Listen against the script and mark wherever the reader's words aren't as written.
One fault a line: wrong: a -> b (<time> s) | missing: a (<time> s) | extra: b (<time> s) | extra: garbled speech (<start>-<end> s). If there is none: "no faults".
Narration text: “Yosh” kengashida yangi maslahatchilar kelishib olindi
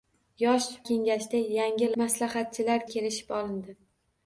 no faults